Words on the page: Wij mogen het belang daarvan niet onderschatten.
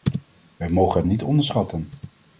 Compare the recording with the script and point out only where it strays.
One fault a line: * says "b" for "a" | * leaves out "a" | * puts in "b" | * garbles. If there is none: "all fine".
* leaves out "belang daarvan"